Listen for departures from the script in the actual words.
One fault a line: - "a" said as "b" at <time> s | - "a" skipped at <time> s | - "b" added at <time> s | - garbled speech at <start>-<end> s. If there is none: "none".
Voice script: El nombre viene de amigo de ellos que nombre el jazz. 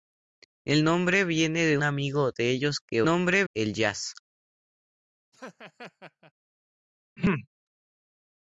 none